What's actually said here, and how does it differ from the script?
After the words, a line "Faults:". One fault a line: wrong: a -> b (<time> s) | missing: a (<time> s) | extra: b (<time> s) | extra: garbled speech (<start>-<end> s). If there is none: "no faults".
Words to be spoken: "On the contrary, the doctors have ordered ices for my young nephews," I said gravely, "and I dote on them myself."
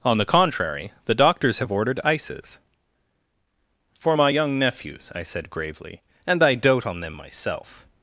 "On the contrary, the doctors have ordered ices for my young nephews," I said gravely, "and I dote on them myself."
Faults:
no faults